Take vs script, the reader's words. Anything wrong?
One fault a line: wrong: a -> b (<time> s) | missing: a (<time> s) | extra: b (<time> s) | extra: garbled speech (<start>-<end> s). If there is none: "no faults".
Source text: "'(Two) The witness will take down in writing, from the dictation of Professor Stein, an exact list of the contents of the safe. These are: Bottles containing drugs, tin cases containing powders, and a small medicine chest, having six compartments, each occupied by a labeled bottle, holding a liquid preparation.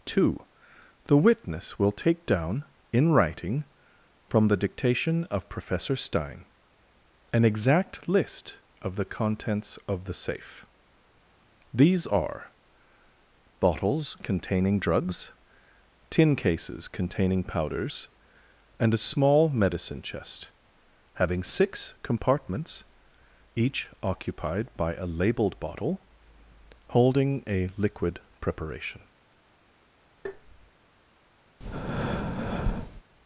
no faults